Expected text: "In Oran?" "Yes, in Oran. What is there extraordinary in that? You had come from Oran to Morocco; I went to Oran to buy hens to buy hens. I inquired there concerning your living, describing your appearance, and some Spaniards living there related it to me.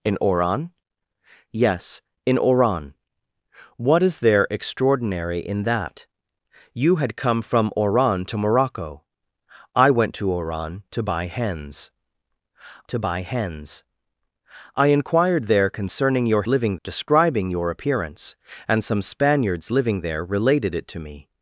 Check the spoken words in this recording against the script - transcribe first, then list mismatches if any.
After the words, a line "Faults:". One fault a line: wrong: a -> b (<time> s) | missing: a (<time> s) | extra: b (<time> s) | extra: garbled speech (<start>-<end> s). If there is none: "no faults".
"In Oran?" "Yes, in Oran. What is there extraordinary in that? You had come from Oran to Morocco; I went to Oran to buy hens to buy hens. I inquired there concerning your living, describing your appearance, and some Spaniards living there related it to me.
Faults:
no faults